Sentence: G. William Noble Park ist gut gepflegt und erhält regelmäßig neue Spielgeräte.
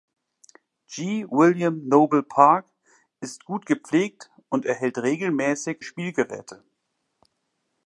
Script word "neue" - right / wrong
wrong